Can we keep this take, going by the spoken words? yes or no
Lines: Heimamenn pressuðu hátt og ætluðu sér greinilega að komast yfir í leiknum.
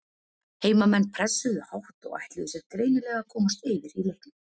yes